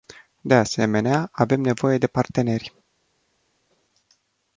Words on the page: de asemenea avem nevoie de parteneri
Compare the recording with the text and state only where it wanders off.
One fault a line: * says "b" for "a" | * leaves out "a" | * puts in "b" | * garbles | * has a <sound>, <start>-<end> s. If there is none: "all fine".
all fine